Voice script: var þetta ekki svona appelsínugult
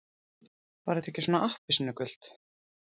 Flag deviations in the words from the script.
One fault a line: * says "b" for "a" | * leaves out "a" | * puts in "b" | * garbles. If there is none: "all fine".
all fine